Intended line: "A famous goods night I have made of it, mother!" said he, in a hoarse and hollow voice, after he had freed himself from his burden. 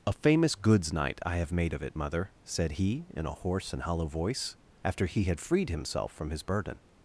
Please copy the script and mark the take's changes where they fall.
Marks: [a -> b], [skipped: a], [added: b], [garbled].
"A famous goods night I have made of it, mother!" said he, in a hoarse and hollow voice, after he had freed himself from his burden.